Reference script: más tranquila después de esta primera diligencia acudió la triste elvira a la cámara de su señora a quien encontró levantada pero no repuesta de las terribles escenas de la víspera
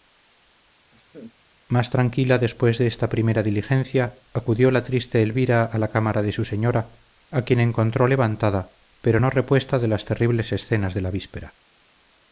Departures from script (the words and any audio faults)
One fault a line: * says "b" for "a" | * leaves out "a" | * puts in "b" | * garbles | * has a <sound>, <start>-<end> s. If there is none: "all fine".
* has a laugh, 0.9-1.3 s